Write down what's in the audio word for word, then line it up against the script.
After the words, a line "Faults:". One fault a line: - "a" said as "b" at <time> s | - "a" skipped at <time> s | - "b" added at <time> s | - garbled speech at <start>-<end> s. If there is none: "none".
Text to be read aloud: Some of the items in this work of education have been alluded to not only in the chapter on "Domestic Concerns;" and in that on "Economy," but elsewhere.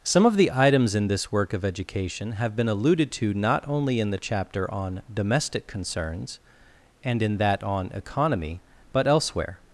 Some of the items in this work of education have been alluded to not only in the chapter on "Domestic Concerns;" and in that on "Economy," but elsewhere.
Faults:
none